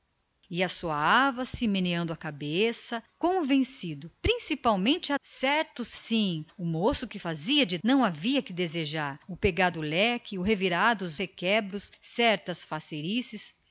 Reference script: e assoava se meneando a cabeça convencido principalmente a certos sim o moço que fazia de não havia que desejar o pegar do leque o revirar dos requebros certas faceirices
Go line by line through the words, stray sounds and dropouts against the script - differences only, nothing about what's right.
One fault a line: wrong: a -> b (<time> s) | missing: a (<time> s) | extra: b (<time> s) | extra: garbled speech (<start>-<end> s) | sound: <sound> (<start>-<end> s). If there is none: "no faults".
no faults